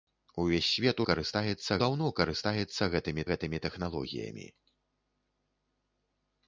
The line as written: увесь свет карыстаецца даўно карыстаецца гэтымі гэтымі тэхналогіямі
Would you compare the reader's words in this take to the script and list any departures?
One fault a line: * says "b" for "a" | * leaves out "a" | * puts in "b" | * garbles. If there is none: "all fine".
all fine